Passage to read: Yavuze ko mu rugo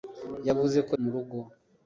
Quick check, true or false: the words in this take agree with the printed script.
true